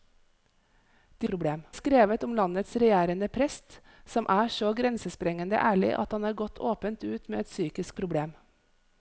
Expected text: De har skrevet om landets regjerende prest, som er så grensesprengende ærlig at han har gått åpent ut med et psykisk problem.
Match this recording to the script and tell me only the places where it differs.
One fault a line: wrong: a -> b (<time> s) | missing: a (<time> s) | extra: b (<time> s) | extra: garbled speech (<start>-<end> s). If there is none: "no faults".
wrong: har -> problem (1.2 s)